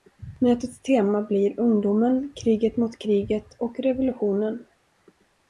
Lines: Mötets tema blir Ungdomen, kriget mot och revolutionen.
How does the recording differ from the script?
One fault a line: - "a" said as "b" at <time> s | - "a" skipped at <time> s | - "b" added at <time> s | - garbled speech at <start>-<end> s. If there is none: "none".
- "kriget" added at 3.0 s